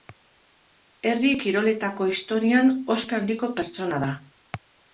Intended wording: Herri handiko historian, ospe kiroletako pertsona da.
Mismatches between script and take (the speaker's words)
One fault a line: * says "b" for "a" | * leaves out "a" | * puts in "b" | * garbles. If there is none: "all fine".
* says "kiroletako" for "handiko"
* says "handiko" for "kiroletako"